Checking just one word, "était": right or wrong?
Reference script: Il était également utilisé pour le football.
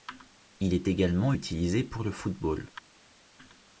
wrong